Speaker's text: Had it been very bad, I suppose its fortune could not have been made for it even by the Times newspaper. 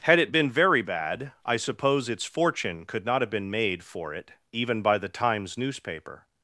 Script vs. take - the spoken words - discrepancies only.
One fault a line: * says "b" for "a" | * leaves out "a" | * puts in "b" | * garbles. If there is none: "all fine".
all fine